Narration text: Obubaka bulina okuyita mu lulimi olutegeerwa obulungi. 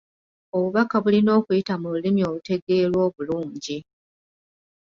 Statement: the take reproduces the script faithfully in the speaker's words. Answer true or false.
true